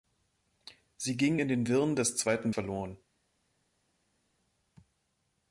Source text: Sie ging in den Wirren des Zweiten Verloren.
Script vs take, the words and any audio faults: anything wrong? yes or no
no